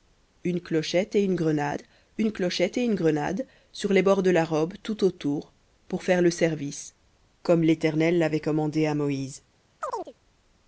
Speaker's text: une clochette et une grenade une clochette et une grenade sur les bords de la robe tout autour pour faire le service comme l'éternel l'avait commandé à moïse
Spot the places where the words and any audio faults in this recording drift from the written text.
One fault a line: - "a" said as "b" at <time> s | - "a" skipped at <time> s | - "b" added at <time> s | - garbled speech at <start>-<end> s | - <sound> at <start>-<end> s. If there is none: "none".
- chirp at 9.8-10.1 s